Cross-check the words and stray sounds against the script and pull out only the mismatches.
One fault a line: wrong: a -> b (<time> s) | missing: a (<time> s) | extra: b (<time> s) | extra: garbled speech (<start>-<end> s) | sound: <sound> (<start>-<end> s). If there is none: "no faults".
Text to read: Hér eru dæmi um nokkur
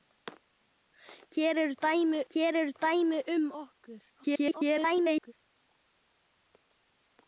extra: hér eru dæmi (2.3 s)
extra: garbled speech (4.1-5.3 s)